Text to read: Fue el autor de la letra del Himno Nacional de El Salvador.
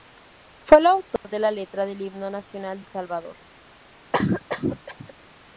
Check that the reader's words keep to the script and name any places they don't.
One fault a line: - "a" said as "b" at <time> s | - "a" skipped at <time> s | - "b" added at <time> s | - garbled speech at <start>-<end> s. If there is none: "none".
- "de" skipped at 2.8 s